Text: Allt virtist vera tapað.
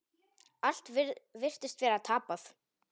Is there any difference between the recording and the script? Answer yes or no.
no